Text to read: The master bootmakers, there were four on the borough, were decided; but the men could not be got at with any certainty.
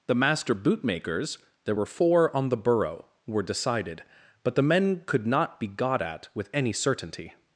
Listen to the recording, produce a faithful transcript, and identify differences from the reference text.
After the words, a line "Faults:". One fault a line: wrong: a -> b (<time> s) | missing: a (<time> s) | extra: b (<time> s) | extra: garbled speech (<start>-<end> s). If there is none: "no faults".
The master bootmakers, there were four on the borough, were decided; but the men could not be got at with any certainty.
Faults:
no faults